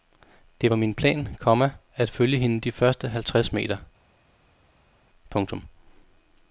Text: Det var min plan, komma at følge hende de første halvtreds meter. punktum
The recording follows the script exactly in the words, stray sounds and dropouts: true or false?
true